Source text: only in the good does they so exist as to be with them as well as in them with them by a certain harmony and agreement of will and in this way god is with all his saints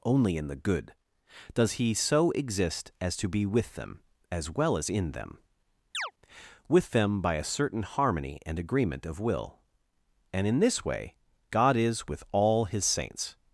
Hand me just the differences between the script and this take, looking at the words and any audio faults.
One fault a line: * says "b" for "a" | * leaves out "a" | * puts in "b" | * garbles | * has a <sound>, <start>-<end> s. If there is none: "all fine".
* says "he" for "they"
* has a chirp, 5.9-6.1 s